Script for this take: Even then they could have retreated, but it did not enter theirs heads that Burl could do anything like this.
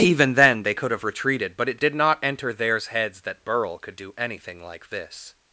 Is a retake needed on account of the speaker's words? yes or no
no